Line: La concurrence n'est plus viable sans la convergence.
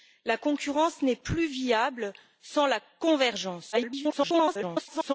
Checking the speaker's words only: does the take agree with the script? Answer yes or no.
no